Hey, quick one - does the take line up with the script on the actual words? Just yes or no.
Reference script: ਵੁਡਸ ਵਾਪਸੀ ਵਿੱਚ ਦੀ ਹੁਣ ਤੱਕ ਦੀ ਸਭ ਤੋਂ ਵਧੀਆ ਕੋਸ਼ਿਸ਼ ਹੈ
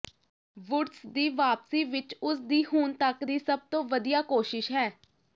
no